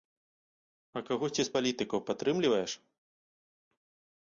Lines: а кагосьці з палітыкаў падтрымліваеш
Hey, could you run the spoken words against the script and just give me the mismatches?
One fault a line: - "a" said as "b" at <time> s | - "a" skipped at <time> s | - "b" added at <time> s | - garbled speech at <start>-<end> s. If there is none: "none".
none